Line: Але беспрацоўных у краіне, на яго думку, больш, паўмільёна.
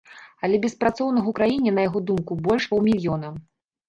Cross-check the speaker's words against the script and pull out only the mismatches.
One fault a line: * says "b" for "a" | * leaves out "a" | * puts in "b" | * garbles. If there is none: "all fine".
all fine